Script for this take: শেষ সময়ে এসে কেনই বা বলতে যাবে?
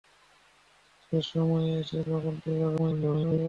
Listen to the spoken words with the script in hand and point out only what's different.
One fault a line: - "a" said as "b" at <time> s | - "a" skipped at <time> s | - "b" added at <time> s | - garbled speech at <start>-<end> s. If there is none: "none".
- "কেনই" skipped at 2.0 s
- garbled speech at 2.8-3.5 s